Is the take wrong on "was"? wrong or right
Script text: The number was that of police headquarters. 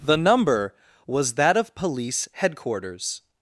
right